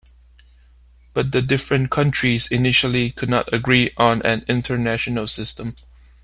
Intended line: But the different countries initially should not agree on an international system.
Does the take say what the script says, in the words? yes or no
no